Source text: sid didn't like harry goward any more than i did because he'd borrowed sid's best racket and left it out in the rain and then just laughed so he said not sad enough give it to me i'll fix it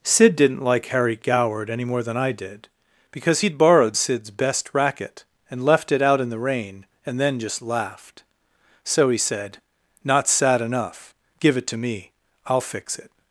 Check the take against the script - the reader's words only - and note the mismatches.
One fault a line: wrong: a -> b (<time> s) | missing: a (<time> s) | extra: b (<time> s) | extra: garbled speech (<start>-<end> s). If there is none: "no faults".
no faults